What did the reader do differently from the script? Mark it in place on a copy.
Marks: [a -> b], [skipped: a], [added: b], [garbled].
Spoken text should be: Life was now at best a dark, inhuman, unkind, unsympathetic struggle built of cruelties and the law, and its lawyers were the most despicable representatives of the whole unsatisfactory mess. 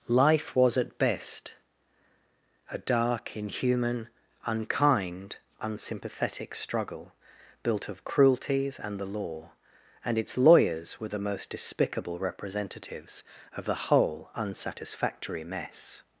Life was [skipped: now] at best a dark, inhuman, unkind, unsympathetic struggle built of cruelties and the law, and its lawyers were the most despicable representatives of the whole unsatisfactory mess.